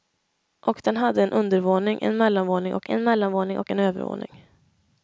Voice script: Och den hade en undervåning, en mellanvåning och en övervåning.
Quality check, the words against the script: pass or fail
fail